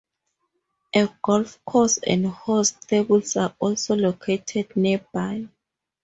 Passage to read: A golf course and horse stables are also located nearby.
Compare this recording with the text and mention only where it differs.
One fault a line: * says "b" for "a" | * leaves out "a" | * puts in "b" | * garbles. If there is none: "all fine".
all fine